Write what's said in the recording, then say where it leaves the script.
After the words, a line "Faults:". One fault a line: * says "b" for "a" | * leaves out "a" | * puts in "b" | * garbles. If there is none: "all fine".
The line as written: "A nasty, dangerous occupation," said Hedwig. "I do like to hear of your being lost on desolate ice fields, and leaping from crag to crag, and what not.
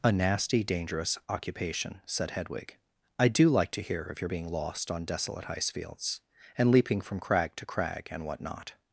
"A nasty, dangerous occupation," said Hedwig. "I do like to hear of your being lost on desolate ice fields, and leaping from crag to crag, and what not.
Faults:
all fine